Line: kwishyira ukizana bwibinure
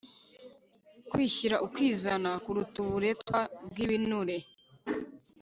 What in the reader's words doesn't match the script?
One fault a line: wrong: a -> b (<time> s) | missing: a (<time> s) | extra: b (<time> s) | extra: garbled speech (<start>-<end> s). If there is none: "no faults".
extra: kuruta uburetwa (2.4 s)